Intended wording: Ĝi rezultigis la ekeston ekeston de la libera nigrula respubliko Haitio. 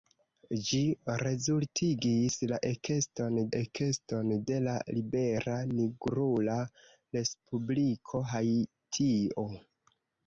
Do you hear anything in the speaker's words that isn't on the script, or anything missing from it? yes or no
no